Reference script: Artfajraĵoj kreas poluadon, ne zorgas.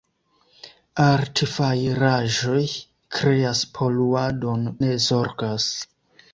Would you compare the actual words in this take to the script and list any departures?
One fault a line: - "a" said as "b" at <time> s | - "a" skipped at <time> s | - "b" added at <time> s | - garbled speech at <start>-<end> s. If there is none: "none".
none